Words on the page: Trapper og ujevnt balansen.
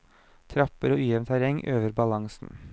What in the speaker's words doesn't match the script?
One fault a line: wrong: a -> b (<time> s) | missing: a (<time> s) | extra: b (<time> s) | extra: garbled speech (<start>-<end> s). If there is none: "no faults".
extra: terreng øver (1.3 s)